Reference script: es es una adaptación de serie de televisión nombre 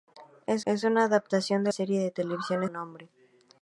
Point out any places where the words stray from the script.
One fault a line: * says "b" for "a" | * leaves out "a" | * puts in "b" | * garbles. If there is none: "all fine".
all fine